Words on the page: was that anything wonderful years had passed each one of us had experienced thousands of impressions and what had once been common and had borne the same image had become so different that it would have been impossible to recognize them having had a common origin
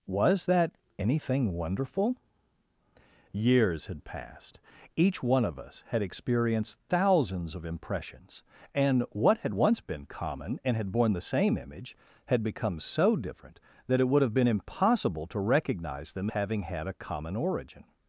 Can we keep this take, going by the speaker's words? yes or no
yes